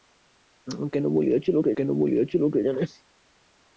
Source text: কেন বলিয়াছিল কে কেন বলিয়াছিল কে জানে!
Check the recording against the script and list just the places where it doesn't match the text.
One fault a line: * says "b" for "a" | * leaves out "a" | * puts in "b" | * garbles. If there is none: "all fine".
all fine